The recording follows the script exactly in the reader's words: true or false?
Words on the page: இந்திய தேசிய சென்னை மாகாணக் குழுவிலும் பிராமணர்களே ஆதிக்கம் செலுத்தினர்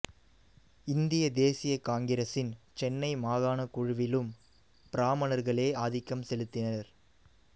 false